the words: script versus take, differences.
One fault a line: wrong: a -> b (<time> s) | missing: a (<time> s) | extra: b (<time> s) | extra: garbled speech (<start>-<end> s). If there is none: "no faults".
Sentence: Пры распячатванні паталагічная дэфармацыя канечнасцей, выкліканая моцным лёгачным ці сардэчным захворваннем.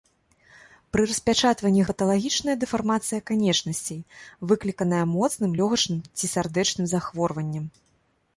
no faults